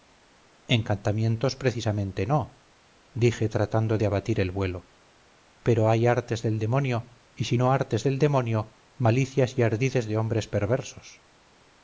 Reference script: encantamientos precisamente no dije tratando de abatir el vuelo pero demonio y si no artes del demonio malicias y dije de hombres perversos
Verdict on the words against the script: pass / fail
fail